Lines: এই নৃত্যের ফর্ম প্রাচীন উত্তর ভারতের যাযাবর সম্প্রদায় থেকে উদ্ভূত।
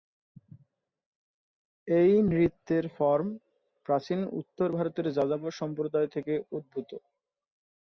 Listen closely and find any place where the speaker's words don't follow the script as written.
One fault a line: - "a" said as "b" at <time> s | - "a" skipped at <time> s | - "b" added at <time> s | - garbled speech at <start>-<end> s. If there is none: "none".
none